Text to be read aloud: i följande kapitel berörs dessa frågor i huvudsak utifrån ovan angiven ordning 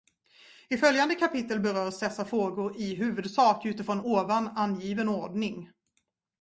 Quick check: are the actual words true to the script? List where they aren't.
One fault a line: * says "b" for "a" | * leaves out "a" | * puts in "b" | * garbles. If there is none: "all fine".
all fine